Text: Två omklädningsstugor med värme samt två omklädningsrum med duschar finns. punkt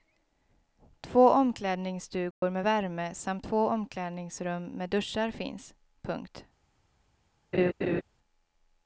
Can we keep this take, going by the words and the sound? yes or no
no